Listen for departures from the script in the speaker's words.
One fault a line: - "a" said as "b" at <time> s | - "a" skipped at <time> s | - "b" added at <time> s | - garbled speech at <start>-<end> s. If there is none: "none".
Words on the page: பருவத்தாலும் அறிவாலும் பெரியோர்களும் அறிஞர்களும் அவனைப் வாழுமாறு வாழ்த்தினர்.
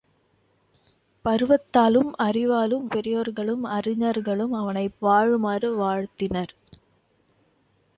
none